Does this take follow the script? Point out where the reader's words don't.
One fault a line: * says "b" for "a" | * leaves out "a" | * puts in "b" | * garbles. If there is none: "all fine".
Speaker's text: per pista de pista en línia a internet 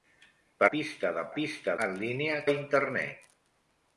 all fine